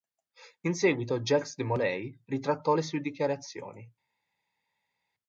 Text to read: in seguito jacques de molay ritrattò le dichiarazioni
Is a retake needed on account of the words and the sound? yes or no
yes